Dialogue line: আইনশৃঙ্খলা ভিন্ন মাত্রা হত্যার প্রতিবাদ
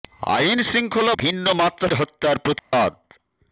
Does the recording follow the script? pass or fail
pass